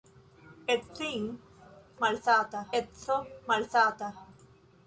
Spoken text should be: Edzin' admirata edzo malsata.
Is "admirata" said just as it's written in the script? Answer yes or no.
no